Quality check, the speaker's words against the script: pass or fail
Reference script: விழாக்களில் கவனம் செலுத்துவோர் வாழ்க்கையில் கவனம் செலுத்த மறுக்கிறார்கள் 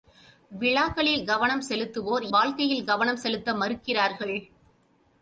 pass